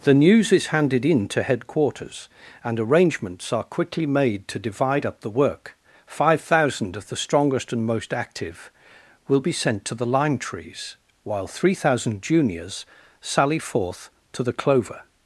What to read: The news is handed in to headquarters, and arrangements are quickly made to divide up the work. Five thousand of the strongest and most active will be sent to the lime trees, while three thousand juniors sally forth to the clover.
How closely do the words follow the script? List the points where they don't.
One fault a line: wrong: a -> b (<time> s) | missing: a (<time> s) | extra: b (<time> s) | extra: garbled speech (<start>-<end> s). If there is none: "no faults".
no faults